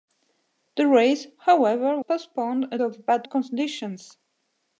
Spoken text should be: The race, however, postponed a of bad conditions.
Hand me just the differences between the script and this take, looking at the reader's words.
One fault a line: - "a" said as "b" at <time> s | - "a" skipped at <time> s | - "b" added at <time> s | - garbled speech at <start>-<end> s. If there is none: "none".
none